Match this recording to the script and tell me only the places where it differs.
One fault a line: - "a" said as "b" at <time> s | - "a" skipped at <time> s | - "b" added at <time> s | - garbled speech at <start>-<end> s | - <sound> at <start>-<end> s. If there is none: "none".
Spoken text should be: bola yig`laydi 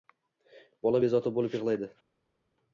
- "bezovta bo`lib" added at 1.0 s